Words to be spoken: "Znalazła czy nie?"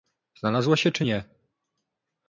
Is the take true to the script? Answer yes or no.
no